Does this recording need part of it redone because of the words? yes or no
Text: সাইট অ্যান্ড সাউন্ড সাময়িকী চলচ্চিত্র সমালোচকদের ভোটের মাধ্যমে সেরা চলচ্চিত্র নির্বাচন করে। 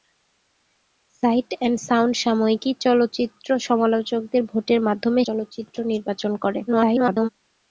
yes